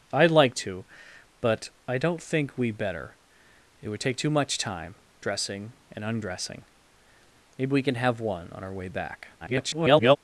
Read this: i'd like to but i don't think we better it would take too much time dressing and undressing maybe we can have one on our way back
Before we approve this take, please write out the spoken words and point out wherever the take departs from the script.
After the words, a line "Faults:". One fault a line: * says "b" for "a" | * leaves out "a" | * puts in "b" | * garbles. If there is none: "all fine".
i'd like to but i don't think we better it would take too much time dressing and undressing maybe we can have one on our way back [garbled]
Faults:
* garbles